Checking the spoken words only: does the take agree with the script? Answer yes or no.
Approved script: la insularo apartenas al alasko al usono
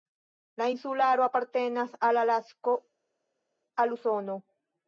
yes